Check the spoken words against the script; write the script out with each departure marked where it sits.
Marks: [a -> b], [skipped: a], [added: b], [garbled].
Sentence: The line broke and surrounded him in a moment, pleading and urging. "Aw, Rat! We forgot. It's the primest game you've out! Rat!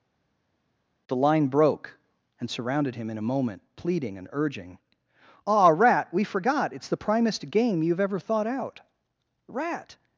The line broke and surrounded him in a moment, pleading and urging. "Aw, Rat! We forgot. It's the primest game you've [added: ever thought] out! Rat!